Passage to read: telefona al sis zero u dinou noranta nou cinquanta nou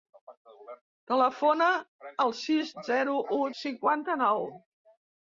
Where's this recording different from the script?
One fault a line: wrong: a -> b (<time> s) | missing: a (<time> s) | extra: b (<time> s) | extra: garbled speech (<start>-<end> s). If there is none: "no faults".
missing: dinou noranta nou (3.4 s)